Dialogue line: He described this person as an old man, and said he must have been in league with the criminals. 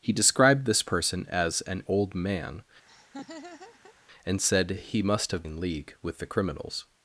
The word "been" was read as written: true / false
false